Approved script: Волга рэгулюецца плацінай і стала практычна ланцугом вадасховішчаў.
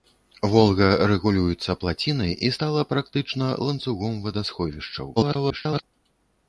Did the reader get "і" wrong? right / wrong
right